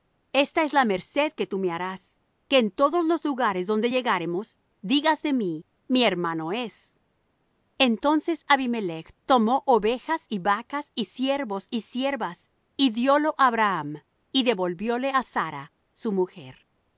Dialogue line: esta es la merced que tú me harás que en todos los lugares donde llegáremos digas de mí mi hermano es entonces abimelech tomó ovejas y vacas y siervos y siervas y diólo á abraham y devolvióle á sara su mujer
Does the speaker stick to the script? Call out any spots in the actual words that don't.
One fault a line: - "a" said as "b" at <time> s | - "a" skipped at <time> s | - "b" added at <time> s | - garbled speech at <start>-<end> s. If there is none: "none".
none